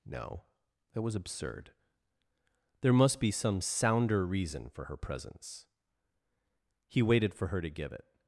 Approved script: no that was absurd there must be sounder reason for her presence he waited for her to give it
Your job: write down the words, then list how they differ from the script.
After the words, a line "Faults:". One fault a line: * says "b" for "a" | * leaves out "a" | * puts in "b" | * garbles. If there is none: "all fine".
no that was absurd there must be some sounder reason for her presence he waited for her to give it
Faults:
* puts in "some"